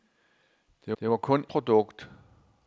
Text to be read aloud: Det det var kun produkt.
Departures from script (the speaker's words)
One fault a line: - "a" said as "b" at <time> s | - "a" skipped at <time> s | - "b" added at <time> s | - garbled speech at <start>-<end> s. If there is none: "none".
none